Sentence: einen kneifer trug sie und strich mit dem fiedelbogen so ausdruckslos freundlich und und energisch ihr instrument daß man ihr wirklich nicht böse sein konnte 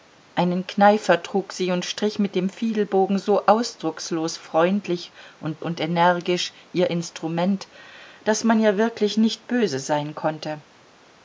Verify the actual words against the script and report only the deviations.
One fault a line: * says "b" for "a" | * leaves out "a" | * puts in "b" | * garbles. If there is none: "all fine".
all fine